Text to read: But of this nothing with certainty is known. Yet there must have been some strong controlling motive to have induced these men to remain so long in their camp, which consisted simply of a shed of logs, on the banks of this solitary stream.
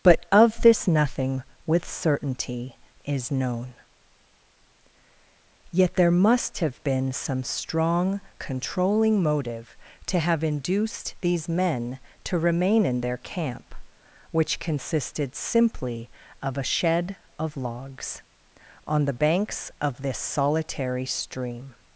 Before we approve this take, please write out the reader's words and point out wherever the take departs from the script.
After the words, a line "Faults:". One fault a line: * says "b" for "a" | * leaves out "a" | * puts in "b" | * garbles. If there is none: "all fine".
But of this nothing with certainty is known. Yet there must have been some strong controlling motive to have induced these men to remain in their camp, which consisted simply of a shed of logs, on the banks of this solitary stream.
Faults:
* leaves out "so long"